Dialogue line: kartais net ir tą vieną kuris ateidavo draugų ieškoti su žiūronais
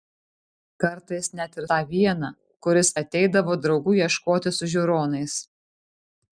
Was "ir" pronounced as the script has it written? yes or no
yes